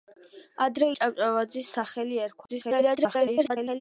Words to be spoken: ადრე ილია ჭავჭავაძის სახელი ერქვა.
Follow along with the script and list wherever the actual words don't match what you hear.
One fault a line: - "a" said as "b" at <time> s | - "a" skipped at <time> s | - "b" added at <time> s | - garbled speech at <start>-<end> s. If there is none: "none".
- "ილია" skipped at 0.9 s
- garbled speech at 2.5-3.8 s